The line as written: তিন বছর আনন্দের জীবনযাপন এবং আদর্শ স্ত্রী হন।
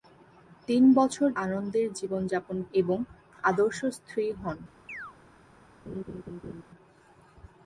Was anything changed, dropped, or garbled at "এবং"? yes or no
no